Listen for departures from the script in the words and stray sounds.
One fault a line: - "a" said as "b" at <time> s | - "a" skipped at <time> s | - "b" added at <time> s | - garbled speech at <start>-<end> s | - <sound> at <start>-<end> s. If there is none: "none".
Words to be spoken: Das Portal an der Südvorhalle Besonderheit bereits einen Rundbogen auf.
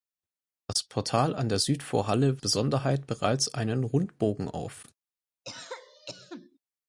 - cough at 5.4-6.6 s